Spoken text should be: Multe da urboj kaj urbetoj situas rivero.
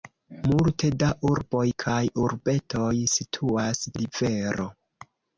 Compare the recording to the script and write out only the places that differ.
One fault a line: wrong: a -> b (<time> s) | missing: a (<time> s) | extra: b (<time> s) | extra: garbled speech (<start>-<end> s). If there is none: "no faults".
no faults